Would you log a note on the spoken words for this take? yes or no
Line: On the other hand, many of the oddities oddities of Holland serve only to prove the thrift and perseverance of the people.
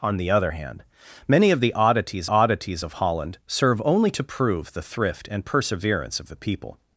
no